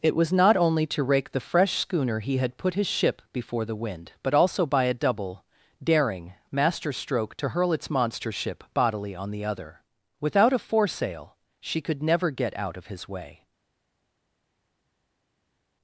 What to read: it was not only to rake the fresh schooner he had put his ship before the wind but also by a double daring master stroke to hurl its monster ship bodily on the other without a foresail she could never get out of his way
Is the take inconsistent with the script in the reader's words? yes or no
no